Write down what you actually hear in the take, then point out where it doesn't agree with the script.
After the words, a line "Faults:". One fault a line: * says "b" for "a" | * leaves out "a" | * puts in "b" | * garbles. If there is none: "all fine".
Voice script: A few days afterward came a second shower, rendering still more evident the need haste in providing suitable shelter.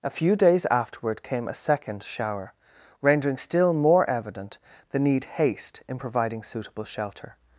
A few days afterward came a second shower, rendering still more evident the need haste in providing suitable shelter.
Faults:
all fine